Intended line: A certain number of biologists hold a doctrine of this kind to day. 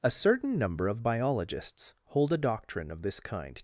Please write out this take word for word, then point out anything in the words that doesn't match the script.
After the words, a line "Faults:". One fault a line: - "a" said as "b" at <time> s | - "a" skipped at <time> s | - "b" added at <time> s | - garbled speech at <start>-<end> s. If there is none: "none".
A certain number of biologists hold a doctrine of this kind.
Faults:
- "to day" skipped at 3.6 s